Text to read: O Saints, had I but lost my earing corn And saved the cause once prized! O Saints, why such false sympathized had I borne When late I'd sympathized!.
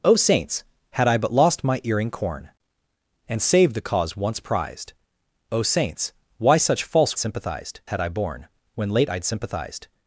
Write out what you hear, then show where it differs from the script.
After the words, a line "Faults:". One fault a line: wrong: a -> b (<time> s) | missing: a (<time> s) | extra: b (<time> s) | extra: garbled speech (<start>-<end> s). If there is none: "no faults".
O Saints, had I but lost my earing corn And saved the cause once prized! O Saints, why such false sympathized had I borne When late I'd sympathized!.
Faults:
no faults